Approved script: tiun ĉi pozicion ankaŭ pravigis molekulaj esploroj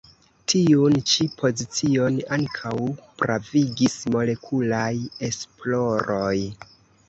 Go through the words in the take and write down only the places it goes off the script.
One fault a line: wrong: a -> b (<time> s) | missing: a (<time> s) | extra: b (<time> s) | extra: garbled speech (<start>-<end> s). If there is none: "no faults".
no faults